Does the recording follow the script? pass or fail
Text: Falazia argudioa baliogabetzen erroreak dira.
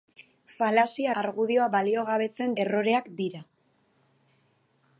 pass